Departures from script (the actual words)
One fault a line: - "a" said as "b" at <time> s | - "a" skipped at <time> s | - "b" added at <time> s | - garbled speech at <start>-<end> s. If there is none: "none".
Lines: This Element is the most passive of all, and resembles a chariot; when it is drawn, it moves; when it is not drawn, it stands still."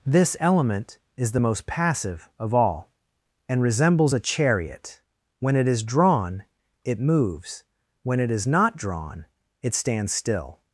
none